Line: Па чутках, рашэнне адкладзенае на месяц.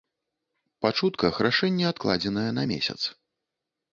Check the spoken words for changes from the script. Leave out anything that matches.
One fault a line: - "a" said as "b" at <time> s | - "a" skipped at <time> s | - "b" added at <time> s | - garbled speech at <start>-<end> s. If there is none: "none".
none